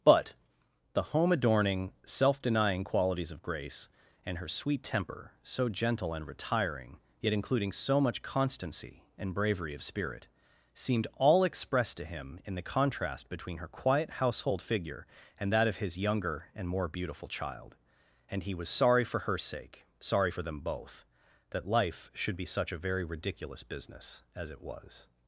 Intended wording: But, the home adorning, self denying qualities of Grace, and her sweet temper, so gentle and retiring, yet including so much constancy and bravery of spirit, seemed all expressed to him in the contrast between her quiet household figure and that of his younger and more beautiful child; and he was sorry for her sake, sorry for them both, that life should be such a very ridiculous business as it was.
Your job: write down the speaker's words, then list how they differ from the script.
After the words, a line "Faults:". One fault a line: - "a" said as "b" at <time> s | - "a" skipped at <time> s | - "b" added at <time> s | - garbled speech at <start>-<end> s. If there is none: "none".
But, the home adorning, self denying qualities of Grace, and her sweet temper, so gentle and retiring, yet including so much constancy and bravery of spirit, seemed all expressed to him in the contrast between her quiet household figure and that of his younger and more beautiful child; and he was sorry for her sake, sorry for them both, that life should be such a very ridiculous business as it was.
Faults:
none